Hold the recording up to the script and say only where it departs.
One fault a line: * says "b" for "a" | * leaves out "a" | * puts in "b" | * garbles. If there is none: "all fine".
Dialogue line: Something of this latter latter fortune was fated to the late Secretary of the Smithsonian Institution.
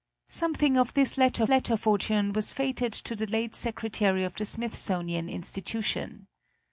all fine